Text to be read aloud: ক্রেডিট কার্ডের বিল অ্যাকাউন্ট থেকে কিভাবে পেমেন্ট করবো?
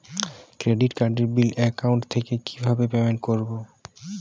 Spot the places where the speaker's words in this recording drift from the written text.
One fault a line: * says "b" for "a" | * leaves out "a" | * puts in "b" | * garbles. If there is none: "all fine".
all fine